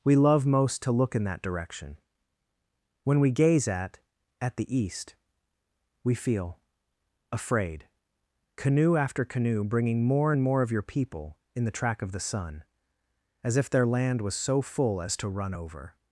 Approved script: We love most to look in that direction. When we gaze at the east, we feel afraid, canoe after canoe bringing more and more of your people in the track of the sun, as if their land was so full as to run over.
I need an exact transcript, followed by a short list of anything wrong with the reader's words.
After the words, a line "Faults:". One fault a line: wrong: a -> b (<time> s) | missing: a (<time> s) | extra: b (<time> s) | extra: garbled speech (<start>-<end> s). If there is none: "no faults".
We love most to look in that direction. When we gaze at at the east, we feel afraid, canoe after canoe bringing more and more of your people in the track of the sun, as if their land was so full as to run over.
Faults:
extra: at (4.4 s)